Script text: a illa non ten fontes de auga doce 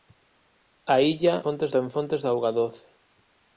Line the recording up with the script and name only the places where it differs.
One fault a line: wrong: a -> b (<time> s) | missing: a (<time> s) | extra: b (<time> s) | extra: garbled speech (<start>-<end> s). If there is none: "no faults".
wrong: non -> fontes (1.4 s)